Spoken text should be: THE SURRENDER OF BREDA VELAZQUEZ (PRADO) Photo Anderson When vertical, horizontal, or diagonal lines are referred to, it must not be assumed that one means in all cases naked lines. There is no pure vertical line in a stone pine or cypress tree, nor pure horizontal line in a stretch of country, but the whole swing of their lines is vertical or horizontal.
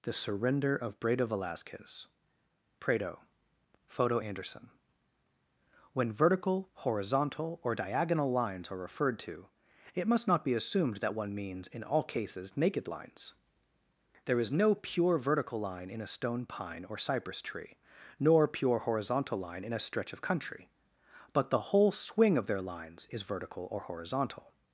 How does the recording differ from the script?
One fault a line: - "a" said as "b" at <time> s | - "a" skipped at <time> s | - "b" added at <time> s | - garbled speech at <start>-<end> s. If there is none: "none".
none